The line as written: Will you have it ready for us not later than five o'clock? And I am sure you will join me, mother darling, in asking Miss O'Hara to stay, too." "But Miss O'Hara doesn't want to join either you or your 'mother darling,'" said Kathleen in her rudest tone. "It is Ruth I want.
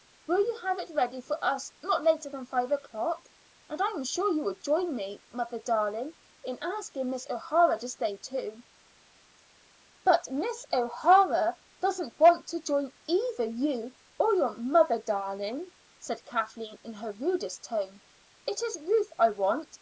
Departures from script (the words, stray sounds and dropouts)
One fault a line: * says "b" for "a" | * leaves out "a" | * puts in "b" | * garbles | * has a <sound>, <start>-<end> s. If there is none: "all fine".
all fine